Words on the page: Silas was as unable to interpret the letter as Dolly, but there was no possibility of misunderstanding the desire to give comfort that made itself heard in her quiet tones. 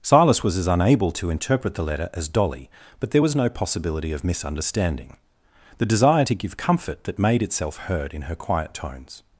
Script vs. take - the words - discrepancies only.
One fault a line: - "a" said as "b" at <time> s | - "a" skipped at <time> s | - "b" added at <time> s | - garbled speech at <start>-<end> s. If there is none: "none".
none